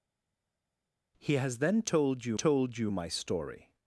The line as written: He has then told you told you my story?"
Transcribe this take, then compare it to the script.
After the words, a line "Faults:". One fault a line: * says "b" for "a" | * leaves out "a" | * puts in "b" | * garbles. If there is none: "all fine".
He has then told you told you my story?"
Faults:
all fine